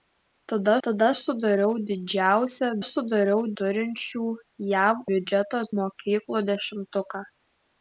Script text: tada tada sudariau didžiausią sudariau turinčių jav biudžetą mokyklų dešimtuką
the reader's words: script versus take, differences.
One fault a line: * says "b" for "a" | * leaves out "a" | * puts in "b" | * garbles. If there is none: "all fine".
all fine